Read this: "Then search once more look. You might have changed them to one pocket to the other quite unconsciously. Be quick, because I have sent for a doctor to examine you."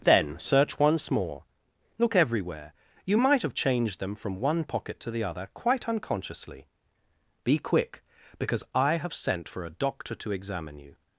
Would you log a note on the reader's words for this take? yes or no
yes